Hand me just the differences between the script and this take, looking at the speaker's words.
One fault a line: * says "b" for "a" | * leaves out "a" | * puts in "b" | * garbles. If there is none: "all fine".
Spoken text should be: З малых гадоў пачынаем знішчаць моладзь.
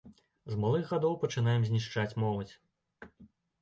all fine